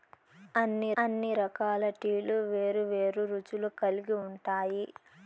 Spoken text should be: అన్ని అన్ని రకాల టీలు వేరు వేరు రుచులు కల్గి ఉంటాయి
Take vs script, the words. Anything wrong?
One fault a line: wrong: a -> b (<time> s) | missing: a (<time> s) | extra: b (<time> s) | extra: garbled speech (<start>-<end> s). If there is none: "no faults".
no faults